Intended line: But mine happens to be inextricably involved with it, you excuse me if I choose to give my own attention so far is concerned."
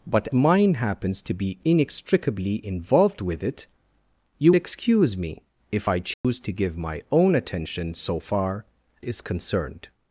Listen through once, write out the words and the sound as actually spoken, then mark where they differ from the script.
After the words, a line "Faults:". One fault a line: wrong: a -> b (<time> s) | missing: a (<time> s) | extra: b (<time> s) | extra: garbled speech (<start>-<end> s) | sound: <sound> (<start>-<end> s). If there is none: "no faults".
But mine happens to be inextricably involved with it, you excuse me if I choose to give my own attention so far is concerned."
Faults:
sound: dropout (6.1-6.2 s)